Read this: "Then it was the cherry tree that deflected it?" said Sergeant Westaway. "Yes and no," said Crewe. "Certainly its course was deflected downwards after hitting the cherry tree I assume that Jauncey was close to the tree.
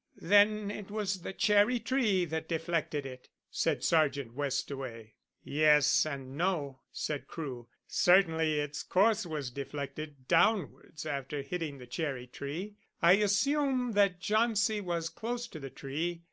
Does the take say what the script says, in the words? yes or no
yes